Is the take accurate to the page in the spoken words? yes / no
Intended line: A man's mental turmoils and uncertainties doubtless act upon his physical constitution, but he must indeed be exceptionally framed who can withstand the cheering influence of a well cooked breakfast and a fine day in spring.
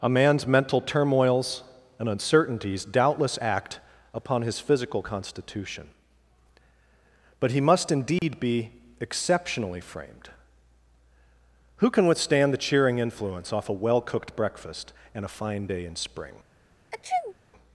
no